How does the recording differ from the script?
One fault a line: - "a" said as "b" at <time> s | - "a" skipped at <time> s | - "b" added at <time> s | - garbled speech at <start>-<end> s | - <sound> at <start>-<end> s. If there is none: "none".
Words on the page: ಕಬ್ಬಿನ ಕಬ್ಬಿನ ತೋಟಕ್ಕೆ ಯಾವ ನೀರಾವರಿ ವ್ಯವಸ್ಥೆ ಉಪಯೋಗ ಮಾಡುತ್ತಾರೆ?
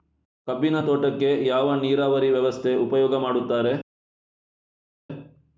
- "ಕಬ್ಬಿನ" skipped at 0.8 s